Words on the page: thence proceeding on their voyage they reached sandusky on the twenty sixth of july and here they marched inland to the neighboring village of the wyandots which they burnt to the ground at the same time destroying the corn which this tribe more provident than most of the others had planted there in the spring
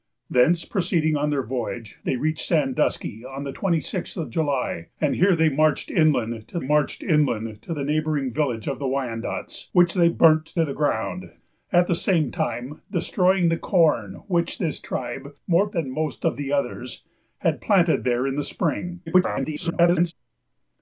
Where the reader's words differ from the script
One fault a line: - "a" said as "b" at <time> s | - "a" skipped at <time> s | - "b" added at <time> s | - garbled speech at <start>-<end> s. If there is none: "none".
- "marched inland to" added at 6.6 s
- "provident" skipped at 15.7 s
- garbled speech at 19.1-20.1 s